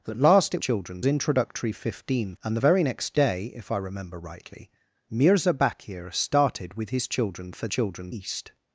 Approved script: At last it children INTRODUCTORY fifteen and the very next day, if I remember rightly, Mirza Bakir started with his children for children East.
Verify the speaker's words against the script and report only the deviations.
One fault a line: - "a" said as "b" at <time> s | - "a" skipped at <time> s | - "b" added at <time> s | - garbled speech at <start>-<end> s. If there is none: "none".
none